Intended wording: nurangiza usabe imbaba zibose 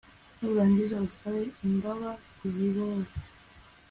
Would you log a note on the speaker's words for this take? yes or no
no